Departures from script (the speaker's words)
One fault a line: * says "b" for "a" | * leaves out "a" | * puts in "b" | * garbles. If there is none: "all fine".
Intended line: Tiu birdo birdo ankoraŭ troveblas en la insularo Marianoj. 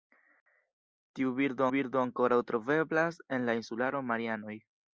all fine